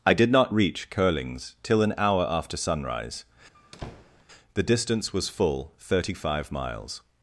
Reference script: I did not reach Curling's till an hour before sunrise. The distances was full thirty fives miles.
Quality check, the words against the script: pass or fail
fail